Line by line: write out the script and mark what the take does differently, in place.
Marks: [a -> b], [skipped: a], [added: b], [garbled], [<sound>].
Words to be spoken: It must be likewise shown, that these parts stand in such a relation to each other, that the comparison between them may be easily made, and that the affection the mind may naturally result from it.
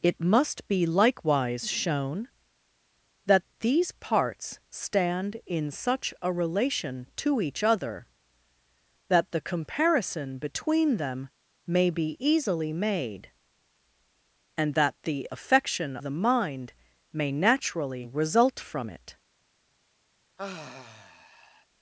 It must be likewise shown, that these parts stand in such a relation to each other, that the comparison between them may be easily made, and that the affection the mind may naturally result from it. [sigh]